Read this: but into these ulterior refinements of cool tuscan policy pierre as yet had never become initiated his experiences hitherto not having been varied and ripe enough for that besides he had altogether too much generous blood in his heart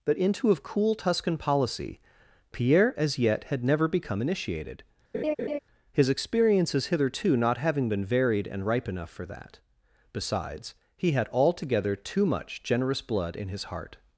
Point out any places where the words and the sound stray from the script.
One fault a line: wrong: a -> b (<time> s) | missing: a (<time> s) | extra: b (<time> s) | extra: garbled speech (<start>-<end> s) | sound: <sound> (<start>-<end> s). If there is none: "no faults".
missing: these ulterior refinements (0.5 s)
sound: laugh (5.1-5.6 s)